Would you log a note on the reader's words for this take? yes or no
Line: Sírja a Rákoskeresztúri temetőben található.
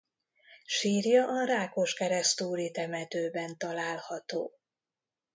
no